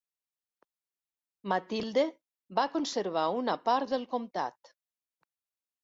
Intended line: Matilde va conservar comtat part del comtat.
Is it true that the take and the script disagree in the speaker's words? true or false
true